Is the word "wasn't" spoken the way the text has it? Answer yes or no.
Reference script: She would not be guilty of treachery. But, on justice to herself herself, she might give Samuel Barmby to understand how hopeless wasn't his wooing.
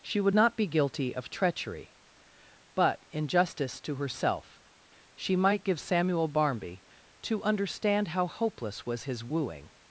no